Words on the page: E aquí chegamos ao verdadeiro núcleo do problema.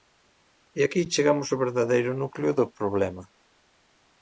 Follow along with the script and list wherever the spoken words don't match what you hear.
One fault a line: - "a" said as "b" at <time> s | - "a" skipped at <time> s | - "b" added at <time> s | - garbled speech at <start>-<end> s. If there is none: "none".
none